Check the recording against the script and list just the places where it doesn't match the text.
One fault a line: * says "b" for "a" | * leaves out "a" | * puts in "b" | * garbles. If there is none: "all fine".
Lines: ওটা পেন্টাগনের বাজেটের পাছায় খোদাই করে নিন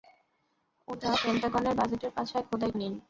* leaves out "করে"